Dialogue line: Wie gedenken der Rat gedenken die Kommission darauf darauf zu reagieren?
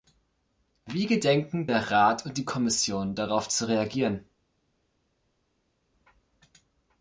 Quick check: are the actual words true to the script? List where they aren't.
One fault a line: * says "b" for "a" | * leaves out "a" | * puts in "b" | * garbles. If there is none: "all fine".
* says "und" for "gedenken"
* leaves out "darauf"